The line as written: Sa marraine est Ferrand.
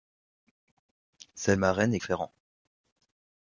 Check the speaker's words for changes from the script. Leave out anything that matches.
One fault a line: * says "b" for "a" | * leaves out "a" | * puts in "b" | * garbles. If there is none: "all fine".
all fine